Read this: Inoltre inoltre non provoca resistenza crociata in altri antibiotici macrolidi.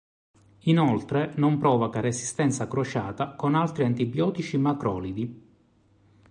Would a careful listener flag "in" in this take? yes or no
yes